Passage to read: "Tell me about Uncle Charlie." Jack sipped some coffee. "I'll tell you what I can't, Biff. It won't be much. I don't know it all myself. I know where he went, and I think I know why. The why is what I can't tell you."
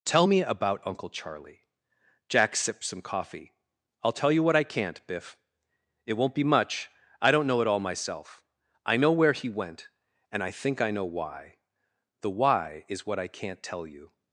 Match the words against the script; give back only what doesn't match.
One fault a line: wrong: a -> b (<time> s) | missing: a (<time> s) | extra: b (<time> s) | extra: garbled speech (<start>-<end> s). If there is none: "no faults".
no faults